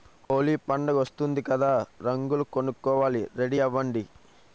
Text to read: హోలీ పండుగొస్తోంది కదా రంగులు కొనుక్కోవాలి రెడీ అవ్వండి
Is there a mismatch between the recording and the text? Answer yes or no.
no